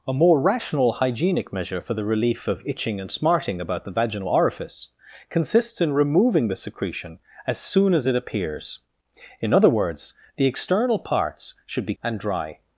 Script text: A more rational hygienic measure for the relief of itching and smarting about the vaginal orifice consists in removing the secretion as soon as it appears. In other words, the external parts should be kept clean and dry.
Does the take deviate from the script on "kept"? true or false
true